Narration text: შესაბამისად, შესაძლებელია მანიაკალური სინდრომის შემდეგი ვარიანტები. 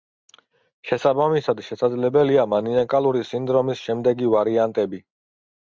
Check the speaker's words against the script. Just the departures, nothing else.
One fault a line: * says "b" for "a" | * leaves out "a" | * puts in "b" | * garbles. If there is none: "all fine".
all fine